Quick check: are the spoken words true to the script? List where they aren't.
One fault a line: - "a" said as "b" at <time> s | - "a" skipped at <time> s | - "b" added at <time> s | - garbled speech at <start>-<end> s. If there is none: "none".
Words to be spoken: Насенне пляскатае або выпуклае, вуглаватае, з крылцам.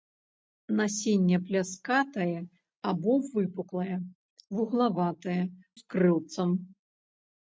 none